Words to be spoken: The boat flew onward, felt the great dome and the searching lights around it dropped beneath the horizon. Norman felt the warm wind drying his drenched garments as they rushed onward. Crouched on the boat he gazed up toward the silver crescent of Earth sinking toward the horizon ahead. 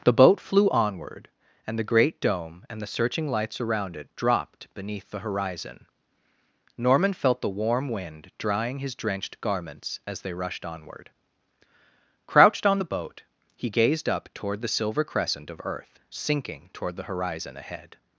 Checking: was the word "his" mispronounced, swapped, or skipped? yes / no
no